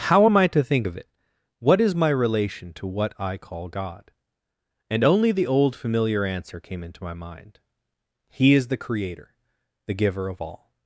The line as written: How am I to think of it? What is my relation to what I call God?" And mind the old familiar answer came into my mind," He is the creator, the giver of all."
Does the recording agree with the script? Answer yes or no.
no